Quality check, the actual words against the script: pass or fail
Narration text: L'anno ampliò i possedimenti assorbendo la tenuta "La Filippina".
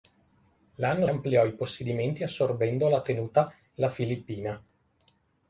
pass